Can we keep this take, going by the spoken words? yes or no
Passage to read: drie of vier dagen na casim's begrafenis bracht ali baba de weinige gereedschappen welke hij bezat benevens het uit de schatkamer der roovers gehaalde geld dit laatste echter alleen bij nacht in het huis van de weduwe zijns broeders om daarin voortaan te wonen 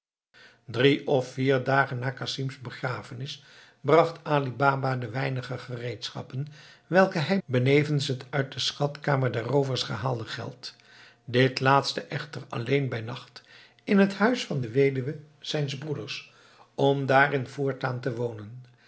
no